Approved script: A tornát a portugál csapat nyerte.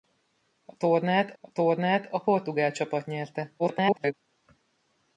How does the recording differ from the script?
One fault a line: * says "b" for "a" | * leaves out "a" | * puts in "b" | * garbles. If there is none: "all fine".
* puts in "tornát a"
* garbles